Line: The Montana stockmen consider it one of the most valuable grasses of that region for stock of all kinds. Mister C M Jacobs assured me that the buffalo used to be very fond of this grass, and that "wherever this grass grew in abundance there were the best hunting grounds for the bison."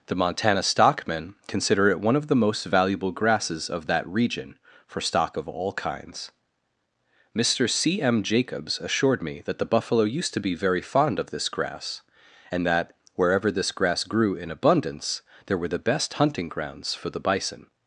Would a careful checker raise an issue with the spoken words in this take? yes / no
no